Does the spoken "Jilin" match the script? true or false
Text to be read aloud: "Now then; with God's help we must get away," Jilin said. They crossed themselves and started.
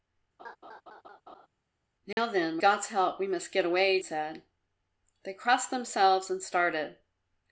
false